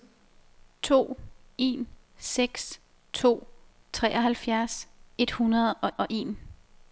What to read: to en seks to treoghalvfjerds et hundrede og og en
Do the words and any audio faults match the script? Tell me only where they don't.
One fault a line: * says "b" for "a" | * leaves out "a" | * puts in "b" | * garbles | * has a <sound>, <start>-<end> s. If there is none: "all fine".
all fine